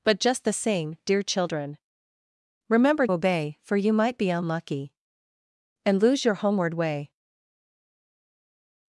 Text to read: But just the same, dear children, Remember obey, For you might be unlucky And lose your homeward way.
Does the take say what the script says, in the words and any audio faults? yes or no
yes